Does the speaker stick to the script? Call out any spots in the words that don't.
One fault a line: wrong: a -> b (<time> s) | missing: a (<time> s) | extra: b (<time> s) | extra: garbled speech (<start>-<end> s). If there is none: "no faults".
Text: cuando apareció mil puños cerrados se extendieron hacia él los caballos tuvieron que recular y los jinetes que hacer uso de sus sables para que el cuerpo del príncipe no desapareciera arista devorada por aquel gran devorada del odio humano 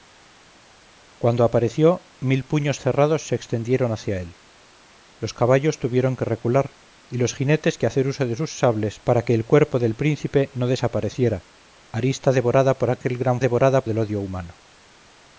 no faults